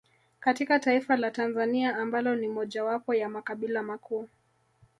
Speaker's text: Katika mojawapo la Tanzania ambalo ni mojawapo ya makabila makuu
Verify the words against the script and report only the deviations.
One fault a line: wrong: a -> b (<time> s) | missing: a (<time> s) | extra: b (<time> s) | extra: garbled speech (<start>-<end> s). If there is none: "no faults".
wrong: mojawapo -> taifa (0.8 s)